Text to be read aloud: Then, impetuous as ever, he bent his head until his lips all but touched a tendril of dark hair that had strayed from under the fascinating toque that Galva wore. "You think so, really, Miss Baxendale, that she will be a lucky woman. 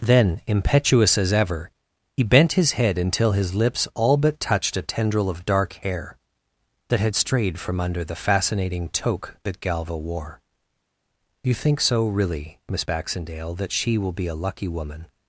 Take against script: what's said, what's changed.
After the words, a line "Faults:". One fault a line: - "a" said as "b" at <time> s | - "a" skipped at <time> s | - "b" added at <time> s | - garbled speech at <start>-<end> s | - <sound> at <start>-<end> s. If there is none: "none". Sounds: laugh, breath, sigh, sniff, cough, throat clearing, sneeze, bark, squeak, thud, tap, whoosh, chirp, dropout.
Then, impetuous as ever, he bent his head until his lips all but touched a tendril of dark hair that had strayed from under the fascinating toque that Galva wore. "You think so, really, Miss Baxendale, that she will be a lucky woman.
Faults:
none